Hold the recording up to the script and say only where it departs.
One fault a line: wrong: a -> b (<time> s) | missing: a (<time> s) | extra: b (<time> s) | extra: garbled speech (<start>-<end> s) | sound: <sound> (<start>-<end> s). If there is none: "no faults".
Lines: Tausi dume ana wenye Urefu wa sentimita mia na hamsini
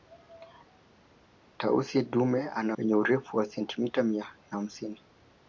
no faults